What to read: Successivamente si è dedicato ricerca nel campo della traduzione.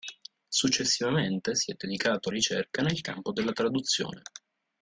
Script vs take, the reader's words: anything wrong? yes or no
no